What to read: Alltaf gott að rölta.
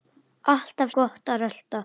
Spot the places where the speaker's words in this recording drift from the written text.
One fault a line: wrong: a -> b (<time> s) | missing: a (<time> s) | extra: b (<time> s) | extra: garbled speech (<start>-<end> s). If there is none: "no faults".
no faults